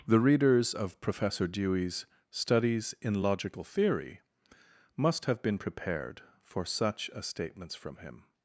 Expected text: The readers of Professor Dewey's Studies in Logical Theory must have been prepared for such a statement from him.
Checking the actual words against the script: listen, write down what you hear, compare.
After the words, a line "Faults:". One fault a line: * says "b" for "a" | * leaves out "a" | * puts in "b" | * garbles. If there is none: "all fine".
The readers of Professor Dewey's Studies in Logical Theory must have been prepared for such a statements from him.
Faults:
* says "statements" for "statement"